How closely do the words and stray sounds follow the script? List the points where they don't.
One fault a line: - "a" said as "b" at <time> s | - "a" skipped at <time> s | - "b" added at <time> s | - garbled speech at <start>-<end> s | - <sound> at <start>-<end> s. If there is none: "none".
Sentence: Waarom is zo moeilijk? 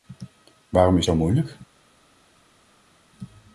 none